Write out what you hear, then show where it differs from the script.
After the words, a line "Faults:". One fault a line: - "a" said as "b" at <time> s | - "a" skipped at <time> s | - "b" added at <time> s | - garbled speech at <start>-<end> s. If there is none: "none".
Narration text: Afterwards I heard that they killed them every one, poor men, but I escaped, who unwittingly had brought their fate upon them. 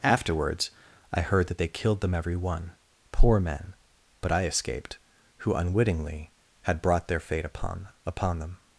Afterwards I heard that they killed them every one, poor men, but I escaped, who unwittingly had brought their fate upon upon them.
Faults:
- "upon" added at 8.1 s